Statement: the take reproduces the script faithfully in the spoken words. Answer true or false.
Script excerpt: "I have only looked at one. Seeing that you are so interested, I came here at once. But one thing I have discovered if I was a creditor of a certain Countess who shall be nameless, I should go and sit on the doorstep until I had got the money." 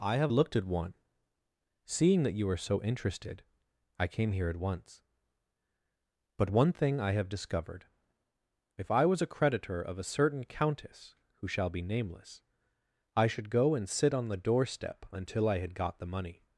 false